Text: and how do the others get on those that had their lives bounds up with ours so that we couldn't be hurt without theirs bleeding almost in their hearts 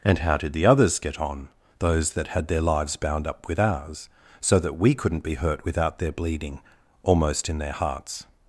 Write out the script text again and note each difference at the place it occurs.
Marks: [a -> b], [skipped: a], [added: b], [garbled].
and how [do -> did] the others get on those that had their lives [bounds -> bound] up with ours so that we couldn't be hurt without [theirs -> their] bleeding almost in their hearts